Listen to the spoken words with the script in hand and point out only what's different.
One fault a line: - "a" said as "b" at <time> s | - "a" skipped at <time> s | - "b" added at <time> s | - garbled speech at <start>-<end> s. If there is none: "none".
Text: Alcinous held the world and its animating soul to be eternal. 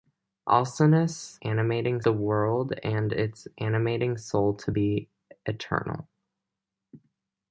- "held" said as "animating" at 1.4 s